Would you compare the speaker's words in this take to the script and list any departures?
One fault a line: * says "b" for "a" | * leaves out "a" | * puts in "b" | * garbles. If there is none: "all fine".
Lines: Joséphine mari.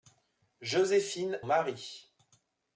all fine